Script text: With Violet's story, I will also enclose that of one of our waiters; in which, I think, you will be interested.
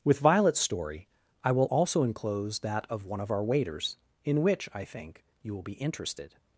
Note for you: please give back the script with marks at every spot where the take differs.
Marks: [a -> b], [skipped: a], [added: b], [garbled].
With Violet's story, I will also enclose that of one of our waiters; in which, I think, you will be interested.